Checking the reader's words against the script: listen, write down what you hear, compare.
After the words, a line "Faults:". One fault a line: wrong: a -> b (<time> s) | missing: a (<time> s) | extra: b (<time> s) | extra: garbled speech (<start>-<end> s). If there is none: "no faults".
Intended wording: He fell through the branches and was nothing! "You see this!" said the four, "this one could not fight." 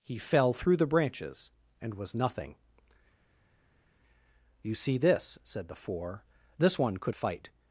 He fell through the branches and was nothing! "You see this!" said the four, "this one could fight."
Faults:
missing: not (7.2 s)